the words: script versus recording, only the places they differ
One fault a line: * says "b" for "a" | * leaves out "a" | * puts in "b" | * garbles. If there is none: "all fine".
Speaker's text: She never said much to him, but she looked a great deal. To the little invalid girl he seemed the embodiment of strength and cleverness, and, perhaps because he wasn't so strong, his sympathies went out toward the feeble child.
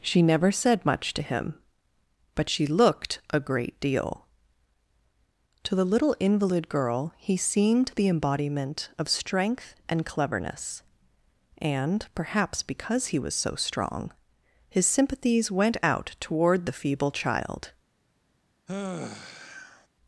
* says "was" for "wasn't"